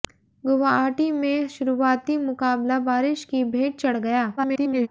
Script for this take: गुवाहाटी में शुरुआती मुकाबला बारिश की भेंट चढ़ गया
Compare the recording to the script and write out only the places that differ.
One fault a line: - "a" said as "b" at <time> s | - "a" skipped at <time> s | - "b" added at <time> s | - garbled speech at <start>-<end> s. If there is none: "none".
- garbled speech at 4.4-4.9 s